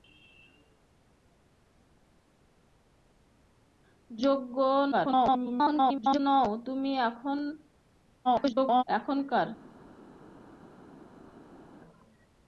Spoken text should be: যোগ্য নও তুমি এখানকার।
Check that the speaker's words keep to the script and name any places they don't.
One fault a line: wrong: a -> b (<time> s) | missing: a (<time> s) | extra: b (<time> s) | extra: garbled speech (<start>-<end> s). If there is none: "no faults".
extra: garbled speech (4.9-6.2 s)
extra: garbled speech (8.2-8.8 s)